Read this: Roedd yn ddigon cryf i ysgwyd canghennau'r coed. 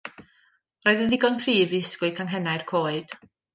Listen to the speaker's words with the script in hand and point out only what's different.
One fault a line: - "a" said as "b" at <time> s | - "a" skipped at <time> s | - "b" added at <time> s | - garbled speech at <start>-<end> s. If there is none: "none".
none